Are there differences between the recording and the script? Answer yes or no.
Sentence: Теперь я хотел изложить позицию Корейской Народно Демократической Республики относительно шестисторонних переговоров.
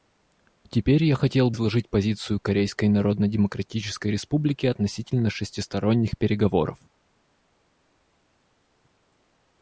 no